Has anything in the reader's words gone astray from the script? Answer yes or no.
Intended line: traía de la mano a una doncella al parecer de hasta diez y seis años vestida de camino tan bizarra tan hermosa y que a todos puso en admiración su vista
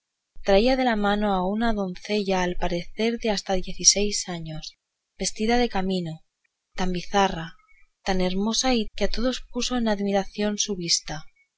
no